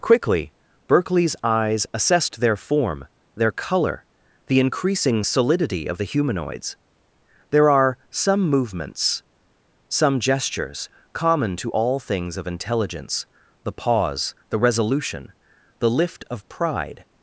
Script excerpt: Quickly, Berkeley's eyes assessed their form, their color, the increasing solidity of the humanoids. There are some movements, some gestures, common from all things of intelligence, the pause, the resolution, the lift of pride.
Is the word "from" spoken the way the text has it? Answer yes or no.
no